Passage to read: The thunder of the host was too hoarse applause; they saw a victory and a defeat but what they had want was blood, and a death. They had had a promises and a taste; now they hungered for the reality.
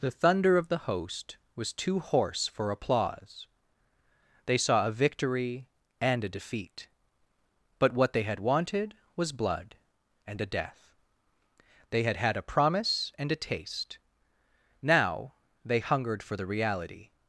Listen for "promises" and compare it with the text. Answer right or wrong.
wrong